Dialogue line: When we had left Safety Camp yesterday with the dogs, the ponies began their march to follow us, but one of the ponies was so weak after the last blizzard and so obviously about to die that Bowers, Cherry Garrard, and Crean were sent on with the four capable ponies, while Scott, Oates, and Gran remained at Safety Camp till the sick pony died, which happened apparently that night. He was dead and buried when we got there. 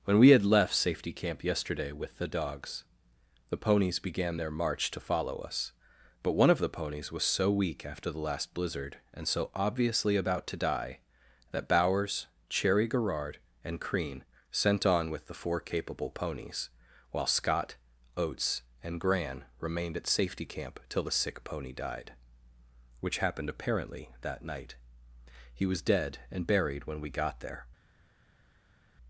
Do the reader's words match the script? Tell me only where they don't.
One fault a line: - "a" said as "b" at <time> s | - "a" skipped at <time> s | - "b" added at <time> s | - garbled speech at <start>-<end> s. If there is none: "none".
- "were" skipped at 14.2 s